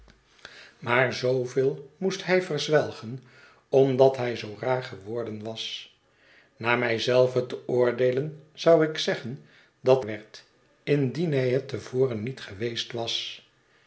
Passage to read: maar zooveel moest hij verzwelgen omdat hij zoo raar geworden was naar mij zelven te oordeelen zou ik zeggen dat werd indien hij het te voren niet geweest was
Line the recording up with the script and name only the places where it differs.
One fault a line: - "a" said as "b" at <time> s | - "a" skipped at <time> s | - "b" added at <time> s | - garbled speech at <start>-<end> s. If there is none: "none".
none